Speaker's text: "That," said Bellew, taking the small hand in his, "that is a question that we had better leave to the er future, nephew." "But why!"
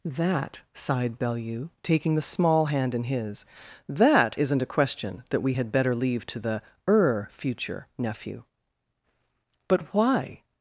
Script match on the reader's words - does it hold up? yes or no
no